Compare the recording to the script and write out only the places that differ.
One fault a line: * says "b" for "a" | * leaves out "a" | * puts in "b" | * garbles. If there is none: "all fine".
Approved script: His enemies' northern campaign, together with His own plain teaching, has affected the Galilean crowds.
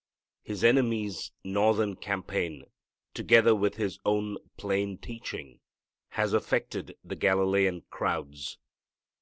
all fine